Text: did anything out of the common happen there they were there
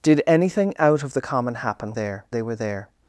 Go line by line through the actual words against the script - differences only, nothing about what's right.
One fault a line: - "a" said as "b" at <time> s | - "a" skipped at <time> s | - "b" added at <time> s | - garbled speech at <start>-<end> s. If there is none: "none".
none